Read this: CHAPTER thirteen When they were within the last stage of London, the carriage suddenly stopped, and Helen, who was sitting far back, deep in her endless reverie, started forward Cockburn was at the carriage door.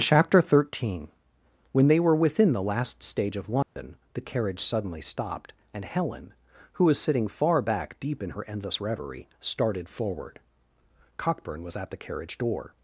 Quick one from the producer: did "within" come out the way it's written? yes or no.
yes